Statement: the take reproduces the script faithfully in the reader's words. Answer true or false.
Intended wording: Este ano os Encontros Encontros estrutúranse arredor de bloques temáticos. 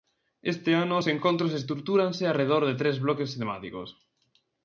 false